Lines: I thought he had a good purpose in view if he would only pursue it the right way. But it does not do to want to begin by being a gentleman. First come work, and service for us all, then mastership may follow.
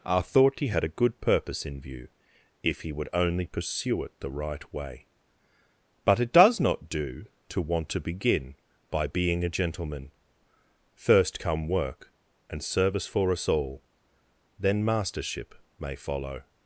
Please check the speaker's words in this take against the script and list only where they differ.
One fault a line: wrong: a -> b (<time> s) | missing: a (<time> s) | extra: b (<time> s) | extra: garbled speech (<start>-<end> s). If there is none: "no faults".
no faults